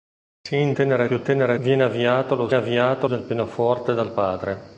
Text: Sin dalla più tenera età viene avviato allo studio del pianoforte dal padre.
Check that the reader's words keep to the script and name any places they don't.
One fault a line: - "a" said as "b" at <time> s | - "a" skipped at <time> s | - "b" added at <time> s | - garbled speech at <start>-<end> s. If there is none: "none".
- "dalla" said as "tenera" at 0.7 s
- "età" skipped at 1.5 s
- "studio" said as "avviato" at 2.5 s